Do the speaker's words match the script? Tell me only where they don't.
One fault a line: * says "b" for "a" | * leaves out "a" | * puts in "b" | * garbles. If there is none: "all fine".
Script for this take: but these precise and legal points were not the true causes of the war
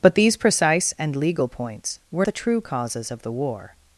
* leaves out "not"